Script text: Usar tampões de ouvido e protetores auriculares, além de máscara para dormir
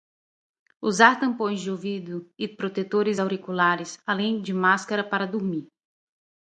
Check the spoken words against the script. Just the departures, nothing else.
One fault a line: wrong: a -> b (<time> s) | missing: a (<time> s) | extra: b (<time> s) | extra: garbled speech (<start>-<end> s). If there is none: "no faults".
no faults